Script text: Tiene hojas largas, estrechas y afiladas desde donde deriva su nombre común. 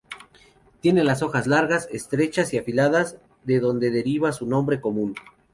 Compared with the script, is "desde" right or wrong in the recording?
wrong